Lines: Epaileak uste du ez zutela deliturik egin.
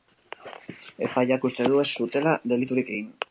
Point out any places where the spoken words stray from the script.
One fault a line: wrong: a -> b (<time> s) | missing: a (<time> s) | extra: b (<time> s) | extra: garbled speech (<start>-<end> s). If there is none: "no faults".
no faults